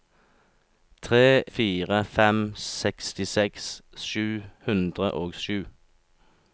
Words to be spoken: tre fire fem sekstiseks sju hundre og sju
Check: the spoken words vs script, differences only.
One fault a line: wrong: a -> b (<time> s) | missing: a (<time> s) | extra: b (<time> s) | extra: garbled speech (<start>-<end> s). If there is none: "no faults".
no faults